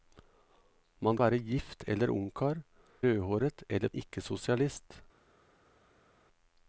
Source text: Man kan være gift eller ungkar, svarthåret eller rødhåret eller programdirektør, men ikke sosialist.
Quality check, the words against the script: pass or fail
fail